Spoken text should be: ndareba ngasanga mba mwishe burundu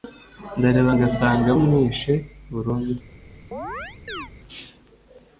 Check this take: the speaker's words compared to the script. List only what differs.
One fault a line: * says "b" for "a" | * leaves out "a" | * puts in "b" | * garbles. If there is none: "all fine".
* leaves out "mba"